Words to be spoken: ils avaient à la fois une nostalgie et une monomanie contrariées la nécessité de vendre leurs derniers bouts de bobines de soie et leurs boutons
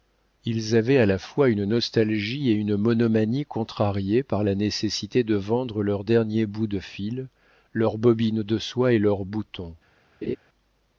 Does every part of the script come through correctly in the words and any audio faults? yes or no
no